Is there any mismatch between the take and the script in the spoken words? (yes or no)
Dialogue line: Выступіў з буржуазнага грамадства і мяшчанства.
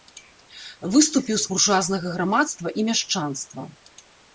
no